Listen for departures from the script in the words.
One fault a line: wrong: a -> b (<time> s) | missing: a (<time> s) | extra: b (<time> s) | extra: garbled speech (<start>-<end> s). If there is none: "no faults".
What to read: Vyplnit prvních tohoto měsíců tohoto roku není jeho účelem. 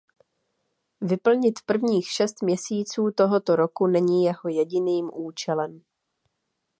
wrong: tohoto -> šest (2.1 s)
extra: jediným (4.5 s)